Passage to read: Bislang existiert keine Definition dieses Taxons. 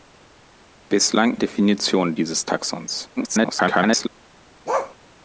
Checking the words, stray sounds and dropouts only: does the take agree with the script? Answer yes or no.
no